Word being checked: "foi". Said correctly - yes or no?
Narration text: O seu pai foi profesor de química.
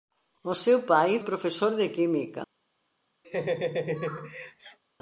no